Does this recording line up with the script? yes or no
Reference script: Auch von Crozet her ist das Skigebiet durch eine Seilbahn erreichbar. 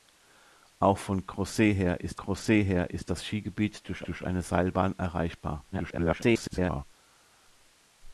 no